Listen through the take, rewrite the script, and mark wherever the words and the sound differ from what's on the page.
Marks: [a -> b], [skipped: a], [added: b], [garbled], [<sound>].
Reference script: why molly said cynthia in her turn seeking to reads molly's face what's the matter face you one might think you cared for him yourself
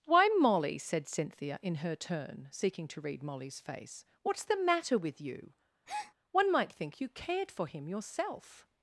why molly said cynthia in her turn seeking to [reads -> read] molly's face what's the matter [face -> with] you [breath] one might think you cared for him yourself